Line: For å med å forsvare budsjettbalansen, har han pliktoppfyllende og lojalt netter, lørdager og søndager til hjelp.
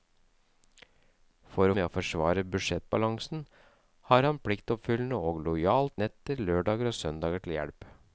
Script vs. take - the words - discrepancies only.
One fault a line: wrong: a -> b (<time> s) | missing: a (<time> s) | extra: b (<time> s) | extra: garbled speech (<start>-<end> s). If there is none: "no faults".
no faults